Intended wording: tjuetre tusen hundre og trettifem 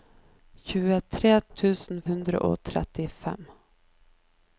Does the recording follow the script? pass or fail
pass